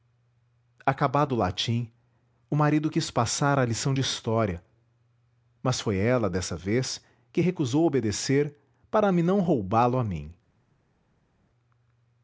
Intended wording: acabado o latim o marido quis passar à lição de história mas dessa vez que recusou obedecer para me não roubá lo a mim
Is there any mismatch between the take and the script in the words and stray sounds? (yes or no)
yes